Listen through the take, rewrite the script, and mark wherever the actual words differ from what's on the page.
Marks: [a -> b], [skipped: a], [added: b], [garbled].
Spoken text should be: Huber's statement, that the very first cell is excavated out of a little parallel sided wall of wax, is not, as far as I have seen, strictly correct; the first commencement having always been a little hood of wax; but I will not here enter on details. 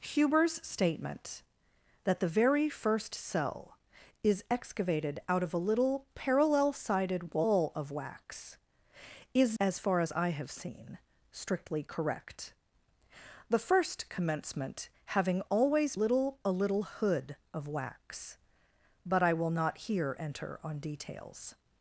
Huber's statement, that the very first cell is excavated out of a little parallel sided wall of wax, is [skipped: not,] as far as I have seen, strictly correct; the first commencement having always [been -> little] a little hood of wax; but I will not here enter on details.